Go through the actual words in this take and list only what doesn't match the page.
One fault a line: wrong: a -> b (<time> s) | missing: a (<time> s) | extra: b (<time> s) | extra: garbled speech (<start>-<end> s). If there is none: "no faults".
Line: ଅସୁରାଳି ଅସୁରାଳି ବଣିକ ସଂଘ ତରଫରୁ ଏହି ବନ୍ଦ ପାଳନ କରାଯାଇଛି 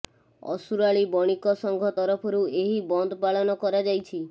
missing: ଅସୁରାଳି (1.0 s)